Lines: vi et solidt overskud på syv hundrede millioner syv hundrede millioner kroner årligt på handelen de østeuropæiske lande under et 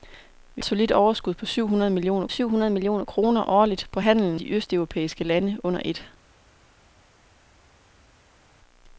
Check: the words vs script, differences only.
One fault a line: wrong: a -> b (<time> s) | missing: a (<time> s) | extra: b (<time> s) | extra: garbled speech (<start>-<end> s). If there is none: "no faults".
no faults